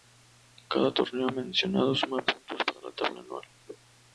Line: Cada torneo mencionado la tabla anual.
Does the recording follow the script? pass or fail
fail